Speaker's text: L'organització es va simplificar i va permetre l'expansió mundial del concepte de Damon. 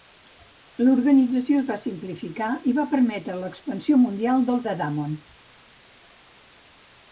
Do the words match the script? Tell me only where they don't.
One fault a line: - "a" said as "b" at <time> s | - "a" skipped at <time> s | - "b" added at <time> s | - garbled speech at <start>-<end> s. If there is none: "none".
- "concepte" skipped at 4.7 s